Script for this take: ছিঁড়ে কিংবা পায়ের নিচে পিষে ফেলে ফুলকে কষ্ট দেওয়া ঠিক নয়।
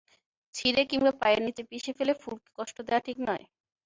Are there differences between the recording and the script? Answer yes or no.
no